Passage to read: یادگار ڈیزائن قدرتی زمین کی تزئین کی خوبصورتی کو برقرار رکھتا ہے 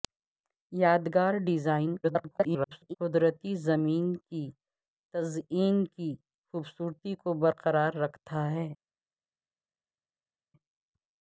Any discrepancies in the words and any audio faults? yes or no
yes